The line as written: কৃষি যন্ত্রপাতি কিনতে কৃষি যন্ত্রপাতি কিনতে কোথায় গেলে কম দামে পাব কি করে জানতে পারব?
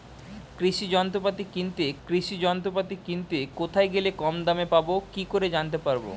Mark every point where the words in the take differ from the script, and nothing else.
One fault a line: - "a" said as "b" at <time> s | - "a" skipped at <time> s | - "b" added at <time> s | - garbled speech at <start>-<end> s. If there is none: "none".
none